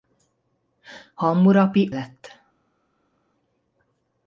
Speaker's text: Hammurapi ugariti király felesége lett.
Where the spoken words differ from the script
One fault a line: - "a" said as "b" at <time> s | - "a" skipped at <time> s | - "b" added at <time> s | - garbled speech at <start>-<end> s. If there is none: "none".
- "ugariti király felesége" skipped at 1.9 s